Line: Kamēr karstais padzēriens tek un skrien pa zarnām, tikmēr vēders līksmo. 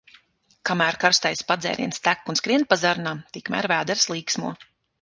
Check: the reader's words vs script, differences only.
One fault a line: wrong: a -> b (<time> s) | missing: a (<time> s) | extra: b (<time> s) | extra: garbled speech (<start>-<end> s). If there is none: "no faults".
no faults